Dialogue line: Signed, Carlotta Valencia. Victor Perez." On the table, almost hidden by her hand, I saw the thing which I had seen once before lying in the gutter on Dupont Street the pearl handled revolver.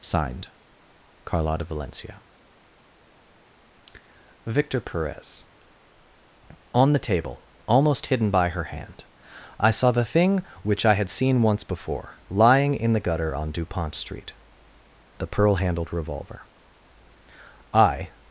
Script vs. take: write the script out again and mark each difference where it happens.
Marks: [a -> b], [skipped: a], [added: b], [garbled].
Signed, Carlotta Valencia. Victor Perez." On the table, almost hidden by her hand, I saw the thing which I had seen once before lying in the gutter on Dupont Street the pearl handled revolver. [added: I]